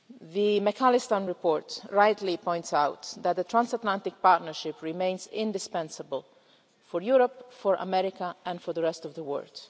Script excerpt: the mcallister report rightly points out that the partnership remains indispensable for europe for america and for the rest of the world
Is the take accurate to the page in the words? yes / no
no